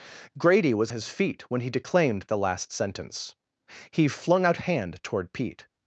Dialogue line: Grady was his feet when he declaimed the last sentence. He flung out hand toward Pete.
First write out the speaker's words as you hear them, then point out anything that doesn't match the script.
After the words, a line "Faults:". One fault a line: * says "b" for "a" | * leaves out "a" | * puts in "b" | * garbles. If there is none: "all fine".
Grady was his feet when he declaimed the last sentence. He flung out hand toward Pete.
Faults:
all fine